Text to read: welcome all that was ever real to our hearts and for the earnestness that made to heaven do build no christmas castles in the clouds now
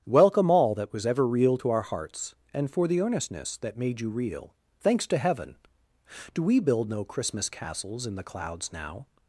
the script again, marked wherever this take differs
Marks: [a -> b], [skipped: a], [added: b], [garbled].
welcome all that was ever real to our hearts and for the earnestness that made [added: you real thanks] to heaven do [added: we] build no christmas castles in the clouds now